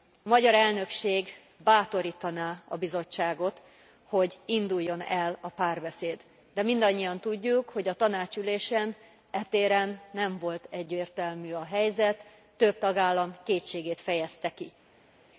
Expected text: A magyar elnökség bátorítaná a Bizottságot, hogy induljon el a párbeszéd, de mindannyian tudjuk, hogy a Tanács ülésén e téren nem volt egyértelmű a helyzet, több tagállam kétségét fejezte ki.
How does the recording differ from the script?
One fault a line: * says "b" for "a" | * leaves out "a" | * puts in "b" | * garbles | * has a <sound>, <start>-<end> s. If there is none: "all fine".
all fine